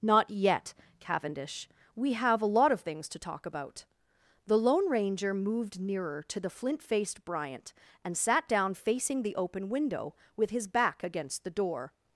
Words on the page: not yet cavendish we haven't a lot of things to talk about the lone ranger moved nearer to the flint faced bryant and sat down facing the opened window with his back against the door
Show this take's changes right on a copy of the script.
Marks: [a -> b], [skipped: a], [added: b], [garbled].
not yet cavendish we [haven't -> have] a lot of things to talk about the lone ranger moved nearer to the flint faced bryant and sat down facing the [opened -> open] window with his back against the door